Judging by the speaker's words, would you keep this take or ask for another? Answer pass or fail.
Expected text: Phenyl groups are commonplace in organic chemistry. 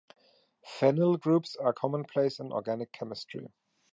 pass